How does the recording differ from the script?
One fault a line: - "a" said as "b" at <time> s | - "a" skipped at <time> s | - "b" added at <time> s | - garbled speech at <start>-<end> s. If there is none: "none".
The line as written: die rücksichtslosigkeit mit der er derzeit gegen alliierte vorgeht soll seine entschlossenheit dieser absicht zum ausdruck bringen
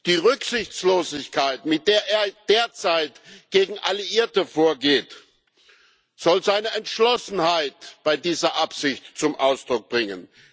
- "bei" added at 8.0 s